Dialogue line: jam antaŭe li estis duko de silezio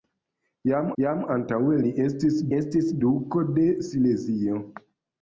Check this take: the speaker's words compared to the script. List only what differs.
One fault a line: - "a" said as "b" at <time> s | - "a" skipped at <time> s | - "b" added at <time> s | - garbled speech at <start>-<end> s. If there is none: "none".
- "jam" added at 1.0 s
- "estis" added at 2.6 s